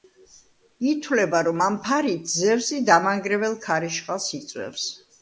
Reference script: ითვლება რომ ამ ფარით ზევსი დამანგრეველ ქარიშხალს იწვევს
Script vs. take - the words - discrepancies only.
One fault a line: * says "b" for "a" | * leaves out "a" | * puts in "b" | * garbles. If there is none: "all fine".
all fine